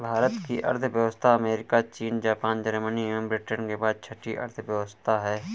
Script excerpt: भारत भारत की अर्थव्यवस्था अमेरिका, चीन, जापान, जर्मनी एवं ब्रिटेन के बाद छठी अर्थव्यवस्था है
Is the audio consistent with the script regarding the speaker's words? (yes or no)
no